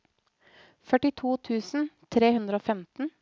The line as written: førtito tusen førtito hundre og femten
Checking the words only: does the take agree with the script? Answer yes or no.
no